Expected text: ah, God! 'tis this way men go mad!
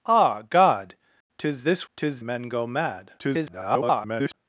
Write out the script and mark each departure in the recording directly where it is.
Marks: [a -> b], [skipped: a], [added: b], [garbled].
ah, God! 'tis this [way -> tis] men go mad! [garbled]